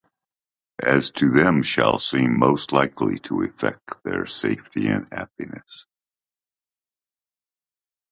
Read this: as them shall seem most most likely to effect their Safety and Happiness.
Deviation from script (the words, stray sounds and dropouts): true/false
true